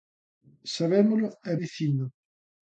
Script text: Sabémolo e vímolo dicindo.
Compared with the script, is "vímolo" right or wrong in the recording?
wrong